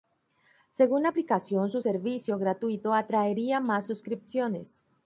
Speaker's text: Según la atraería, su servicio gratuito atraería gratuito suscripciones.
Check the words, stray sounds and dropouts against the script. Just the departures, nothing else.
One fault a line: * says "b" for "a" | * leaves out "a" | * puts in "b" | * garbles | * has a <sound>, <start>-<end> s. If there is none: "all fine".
* says "aplicación" for "atraería"
* says "más" for "gratuito"